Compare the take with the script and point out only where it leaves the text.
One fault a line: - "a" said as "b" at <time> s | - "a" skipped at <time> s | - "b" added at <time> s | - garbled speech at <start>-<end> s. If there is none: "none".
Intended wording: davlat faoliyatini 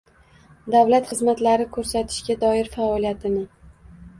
- "xizmatlari ko‘rsatishga doir" added at 1.1 s